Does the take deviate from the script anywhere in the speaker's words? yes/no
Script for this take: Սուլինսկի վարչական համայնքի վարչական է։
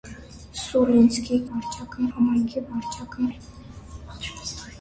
no